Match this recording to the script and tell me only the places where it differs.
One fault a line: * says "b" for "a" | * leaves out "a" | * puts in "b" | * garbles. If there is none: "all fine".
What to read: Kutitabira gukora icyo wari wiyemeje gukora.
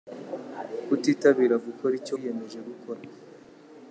* leaves out "wari"